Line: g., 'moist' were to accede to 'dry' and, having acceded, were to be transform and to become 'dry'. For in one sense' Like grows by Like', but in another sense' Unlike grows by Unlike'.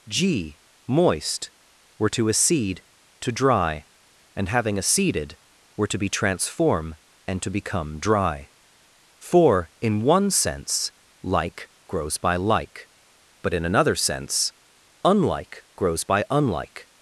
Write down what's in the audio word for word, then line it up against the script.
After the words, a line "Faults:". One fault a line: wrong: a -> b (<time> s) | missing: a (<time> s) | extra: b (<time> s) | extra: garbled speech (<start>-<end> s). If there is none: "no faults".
g., 'moist' were to accede to 'dry' and, having acceded, were to be transform and to become 'dry'. For in one sense' Like grows by Like', but in another sense' Unlike grows by Unlike'.
Faults:
no faults